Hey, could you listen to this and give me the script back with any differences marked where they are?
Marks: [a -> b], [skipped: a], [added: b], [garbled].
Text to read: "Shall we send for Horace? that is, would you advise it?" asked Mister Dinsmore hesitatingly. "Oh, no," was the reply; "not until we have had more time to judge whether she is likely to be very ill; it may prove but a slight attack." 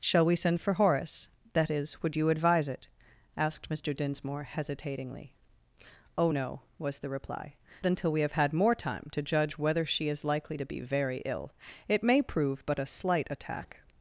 "Shall we send for Horace? that is, would you advise it?" asked Mister Dinsmore hesitatingly. "Oh, no," was the reply; [skipped: "not] until we have had more time to judge whether she is likely to be very ill; it may prove but a slight attack."